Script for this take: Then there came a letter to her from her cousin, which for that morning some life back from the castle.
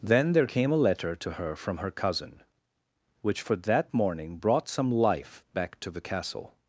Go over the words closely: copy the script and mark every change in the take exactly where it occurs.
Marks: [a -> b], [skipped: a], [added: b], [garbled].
Then there came a letter to her from her cousin, which for that morning [added: brought] some life back [from -> to] the castle.